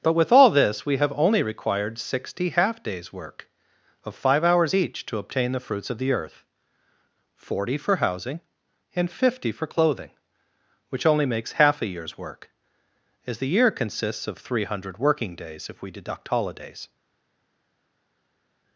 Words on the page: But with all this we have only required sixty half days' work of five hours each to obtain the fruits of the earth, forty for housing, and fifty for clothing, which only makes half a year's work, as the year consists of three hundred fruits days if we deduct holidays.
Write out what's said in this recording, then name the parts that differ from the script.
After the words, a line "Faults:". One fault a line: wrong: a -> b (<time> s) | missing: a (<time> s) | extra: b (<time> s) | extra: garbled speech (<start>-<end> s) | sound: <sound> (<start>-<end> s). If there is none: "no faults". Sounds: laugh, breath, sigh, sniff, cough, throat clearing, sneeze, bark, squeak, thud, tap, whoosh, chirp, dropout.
But with all this we have only required sixty half days' work of five hours each to obtain the fruits of the earth, forty for housing, and fifty for clothing, which only makes half a year's work, as the year consists of three hundred working days if we deduct holidays.
Faults:
wrong: fruits -> working (15.0 s)